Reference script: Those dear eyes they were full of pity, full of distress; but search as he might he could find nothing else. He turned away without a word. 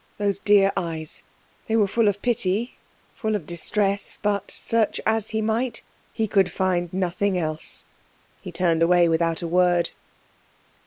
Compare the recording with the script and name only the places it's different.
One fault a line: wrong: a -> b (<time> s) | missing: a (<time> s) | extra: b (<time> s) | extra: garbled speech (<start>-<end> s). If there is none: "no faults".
no faults